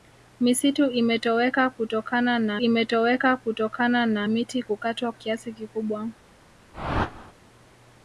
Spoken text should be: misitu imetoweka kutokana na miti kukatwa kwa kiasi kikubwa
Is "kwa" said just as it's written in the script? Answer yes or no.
no